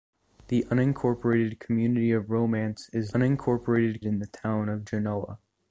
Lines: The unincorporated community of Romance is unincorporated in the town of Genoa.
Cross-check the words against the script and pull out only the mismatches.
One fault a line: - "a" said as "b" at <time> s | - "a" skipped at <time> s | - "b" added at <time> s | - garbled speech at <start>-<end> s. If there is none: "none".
none